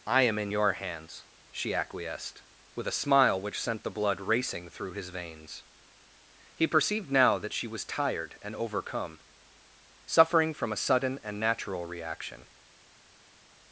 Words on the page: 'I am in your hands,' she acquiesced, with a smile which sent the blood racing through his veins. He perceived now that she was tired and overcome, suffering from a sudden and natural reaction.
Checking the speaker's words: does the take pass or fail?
pass